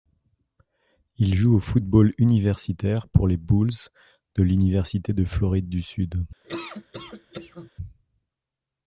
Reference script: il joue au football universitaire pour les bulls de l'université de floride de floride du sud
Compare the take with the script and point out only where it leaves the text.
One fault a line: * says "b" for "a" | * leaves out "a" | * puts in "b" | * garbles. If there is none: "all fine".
* leaves out "de floride"